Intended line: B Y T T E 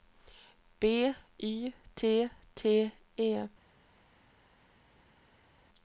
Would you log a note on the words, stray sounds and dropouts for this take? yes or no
no